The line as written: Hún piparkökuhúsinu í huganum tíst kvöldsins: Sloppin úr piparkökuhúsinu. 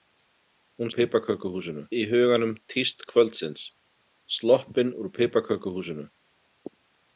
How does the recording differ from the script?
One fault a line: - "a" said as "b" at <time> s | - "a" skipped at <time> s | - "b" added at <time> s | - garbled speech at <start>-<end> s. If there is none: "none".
none